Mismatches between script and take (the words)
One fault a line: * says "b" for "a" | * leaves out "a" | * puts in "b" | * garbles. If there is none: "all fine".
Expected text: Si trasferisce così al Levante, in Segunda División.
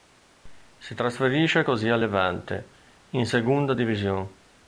all fine